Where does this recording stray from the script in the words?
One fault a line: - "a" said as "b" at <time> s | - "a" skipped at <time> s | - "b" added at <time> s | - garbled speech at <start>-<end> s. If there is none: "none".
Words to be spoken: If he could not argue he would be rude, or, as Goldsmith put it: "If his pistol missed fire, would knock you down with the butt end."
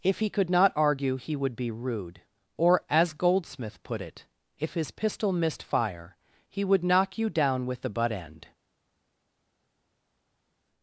- "he" added at 6.5 s